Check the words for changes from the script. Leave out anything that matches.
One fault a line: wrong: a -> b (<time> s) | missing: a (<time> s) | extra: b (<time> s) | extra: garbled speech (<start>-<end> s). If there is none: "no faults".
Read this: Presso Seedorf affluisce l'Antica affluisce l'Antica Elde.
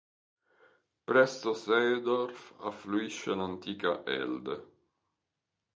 missing: affluisce l'Antica (4.0 s)